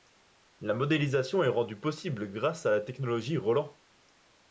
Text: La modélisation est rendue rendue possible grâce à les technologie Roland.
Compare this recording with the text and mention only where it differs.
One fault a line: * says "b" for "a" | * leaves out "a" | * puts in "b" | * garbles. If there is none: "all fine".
* leaves out "rendue"
* says "la" for "les"